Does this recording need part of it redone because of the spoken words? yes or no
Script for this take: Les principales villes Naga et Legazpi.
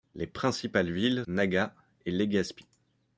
no